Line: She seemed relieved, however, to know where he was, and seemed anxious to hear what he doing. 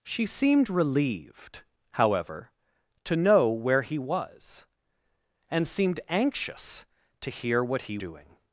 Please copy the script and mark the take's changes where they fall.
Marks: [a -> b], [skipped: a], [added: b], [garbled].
She seemed relieved, however, to know where he was, and seemed anxious to hear what he doing.